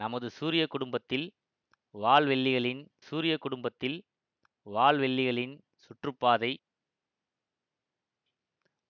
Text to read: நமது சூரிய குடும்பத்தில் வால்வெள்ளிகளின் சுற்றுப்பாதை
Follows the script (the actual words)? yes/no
no